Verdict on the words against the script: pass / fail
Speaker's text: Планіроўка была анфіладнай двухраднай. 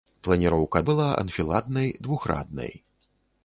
pass